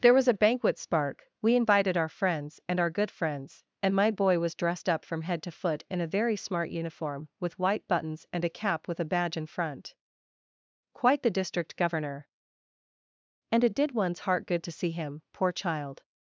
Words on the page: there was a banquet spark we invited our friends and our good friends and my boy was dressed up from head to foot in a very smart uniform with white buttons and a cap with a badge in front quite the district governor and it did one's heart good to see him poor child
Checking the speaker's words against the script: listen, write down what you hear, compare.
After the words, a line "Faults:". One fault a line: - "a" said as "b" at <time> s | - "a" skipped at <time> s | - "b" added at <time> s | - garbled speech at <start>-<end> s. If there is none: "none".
there was a banquet spark we invited our friends and our good friends and my boy was dressed up from head to foot in a very smart uniform with white buttons and a cap with a badge in front quite the district governor and it did one's heart good to see him poor child
Faults:
none